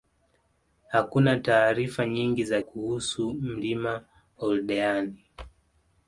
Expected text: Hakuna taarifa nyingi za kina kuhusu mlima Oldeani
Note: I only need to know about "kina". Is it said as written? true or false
false